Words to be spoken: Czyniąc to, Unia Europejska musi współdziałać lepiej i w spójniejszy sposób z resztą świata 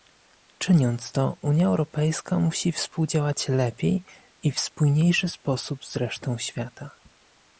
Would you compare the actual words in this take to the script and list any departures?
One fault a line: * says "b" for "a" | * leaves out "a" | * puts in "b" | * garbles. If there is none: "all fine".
all fine